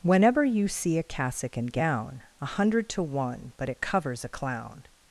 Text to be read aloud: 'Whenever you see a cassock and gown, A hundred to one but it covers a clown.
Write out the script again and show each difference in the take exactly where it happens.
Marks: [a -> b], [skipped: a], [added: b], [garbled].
'Whenever you see a cassock and gown, A hundred to one but it covers a clown.